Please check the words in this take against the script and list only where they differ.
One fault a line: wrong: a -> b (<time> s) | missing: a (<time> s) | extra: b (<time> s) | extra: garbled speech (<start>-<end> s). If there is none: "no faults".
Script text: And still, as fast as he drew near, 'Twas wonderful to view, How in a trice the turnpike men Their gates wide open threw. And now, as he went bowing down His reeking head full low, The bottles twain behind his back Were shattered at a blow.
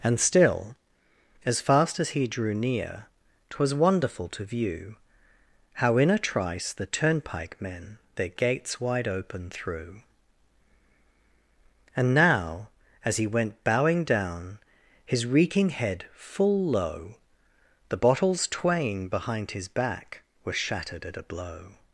no faults